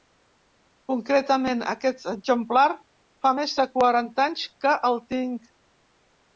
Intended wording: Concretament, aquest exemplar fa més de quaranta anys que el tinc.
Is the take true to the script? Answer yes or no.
yes